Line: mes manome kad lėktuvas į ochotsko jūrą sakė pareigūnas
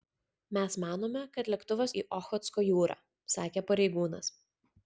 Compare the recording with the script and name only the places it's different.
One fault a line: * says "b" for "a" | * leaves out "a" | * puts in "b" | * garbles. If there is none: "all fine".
all fine